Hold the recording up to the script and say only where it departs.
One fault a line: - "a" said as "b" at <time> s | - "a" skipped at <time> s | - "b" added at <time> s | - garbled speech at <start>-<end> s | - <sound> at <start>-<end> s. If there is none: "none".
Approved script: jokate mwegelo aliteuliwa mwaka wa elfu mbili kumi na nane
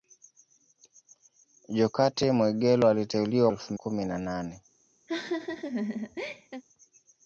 - "mwaka" skipped at 3.5 s
- "mbili" skipped at 3.7 s
- laugh at 5.1-6.6 s